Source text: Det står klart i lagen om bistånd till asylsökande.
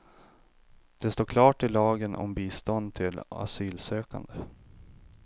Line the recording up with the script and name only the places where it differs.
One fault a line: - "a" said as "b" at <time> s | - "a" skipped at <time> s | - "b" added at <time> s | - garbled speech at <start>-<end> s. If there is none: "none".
none